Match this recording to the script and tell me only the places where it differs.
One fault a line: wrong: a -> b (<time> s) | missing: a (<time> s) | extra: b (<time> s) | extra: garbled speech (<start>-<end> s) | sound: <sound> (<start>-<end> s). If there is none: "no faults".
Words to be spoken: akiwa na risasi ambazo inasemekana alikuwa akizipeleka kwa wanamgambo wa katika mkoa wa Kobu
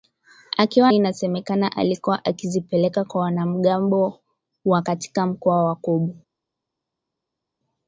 missing: na risasi ambazo (0.9 s)